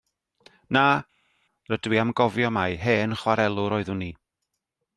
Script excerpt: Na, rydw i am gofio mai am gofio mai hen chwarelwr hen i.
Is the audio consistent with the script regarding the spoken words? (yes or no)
no